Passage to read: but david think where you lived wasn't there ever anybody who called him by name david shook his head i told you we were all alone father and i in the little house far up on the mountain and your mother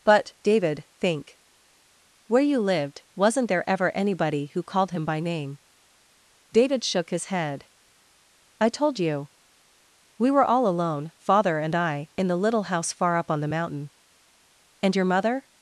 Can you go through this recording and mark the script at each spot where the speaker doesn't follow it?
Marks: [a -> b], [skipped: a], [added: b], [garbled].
but david think where you lived wasn't there ever anybody who called him by name david shook his head i told you we were all alone father and i in the little house far up on the mountain and your mother